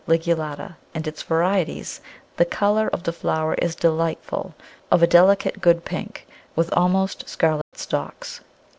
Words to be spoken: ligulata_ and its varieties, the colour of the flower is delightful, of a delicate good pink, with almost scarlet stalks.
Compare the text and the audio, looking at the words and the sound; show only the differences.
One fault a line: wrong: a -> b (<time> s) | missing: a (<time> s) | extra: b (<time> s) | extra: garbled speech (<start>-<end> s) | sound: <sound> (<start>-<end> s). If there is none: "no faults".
sound: dropout (7.6-7.7 s)